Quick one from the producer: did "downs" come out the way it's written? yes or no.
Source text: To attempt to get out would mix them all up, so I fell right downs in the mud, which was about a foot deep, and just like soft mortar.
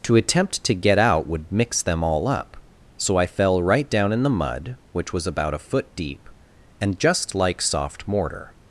no